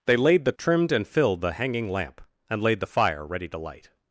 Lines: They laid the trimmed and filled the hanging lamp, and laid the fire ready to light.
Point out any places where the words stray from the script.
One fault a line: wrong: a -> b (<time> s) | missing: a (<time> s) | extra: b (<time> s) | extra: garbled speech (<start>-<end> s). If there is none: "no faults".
no faults